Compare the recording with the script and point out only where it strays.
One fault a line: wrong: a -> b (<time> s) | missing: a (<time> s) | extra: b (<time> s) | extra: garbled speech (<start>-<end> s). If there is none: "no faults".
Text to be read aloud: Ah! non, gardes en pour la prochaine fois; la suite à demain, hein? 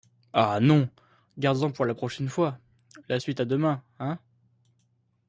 no faults